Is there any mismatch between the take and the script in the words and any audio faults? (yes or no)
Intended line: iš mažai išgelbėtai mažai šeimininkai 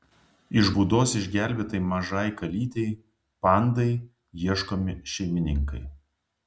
yes